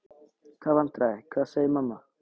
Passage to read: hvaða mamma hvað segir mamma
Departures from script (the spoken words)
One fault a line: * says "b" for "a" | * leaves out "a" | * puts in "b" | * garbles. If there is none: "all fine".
* says "vandræði" for "mamma"